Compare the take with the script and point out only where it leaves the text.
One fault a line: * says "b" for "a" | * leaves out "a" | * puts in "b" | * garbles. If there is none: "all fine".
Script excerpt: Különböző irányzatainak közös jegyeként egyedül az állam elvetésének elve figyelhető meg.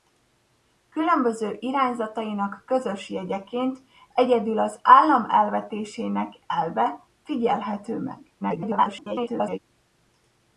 * garbles